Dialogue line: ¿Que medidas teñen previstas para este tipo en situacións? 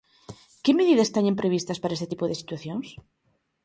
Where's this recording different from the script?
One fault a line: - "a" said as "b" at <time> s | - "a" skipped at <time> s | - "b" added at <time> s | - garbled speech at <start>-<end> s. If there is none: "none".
- "en" said as "de" at 2.3 s